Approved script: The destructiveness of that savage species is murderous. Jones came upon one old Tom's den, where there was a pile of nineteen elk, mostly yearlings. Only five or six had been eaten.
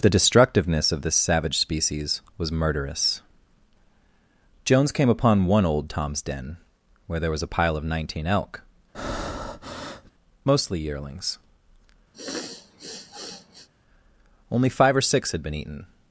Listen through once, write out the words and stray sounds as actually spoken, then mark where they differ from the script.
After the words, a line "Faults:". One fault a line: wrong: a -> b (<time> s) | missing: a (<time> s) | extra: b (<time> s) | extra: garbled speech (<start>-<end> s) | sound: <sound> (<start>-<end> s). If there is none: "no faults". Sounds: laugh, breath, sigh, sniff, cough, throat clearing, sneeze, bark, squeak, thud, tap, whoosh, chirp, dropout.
The destructiveness of this savage species was murderous. Jones came upon one old Tom's den, where there was a pile of nineteen elk, mostly yearlings. Only five or six had been eaten.
Faults:
wrong: that -> this (1.0 s)
wrong: is -> was (2.4 s)
sound: breath (8.9-10.1 s)
sound: sniff (12.1-13.7 s)